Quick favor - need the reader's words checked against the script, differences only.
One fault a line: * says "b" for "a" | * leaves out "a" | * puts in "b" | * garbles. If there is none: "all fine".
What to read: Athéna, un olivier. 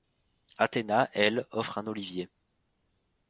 * puts in "elle offre"